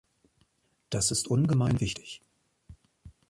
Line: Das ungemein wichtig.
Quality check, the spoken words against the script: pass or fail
fail